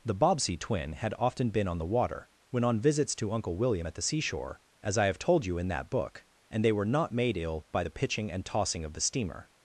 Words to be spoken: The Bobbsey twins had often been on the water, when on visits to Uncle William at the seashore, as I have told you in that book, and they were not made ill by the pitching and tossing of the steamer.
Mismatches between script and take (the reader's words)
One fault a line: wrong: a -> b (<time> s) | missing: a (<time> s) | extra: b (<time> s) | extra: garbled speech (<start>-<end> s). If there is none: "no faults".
wrong: twins -> twin (0.6 s)